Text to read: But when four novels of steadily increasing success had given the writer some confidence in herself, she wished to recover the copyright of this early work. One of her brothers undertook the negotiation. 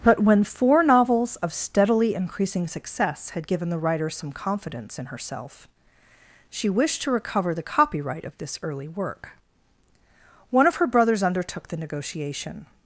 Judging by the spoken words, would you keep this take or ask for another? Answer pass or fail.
pass